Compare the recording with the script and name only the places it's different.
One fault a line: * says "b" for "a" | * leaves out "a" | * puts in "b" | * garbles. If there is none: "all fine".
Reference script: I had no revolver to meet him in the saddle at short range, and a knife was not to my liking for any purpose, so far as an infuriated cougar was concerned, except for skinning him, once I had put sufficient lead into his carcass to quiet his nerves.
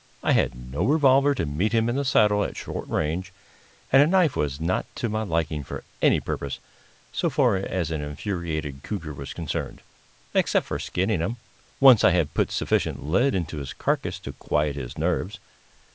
all fine